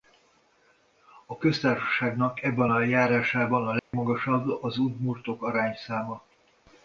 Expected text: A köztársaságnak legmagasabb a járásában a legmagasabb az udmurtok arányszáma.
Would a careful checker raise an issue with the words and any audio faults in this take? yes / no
yes